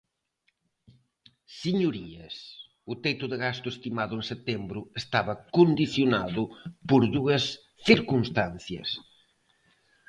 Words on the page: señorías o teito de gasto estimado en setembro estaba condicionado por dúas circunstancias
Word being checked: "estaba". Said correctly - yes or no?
yes